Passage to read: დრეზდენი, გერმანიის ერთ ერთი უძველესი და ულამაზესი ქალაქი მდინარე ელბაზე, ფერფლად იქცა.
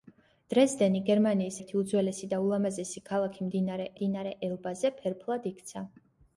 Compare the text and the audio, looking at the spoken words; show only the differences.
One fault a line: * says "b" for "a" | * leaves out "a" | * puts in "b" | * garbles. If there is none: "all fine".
* leaves out "ერთ"
* puts in "მდინარე"